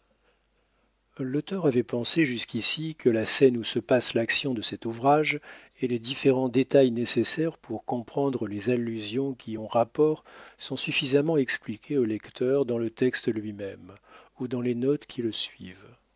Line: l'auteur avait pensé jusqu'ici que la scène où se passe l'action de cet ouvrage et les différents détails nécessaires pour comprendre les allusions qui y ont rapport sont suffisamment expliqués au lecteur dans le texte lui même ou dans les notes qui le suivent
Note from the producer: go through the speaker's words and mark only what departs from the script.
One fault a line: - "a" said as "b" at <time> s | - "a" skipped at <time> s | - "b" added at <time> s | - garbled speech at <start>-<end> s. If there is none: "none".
none